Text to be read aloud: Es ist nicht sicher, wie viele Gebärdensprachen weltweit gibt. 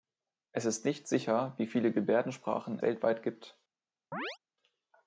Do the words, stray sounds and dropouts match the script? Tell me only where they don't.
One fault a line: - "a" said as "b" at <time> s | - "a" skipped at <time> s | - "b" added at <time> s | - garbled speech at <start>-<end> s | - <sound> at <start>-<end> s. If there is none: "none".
- chirp at 4.1-4.4 s